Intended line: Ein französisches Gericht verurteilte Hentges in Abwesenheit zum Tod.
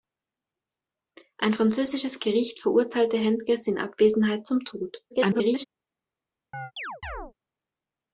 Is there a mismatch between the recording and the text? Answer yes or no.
yes